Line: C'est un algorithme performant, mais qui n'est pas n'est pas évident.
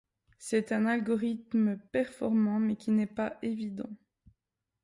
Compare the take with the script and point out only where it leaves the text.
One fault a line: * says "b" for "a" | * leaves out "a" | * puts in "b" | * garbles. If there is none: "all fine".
* leaves out "n'est pas"